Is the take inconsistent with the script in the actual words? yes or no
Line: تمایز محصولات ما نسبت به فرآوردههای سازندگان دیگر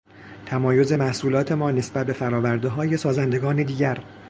no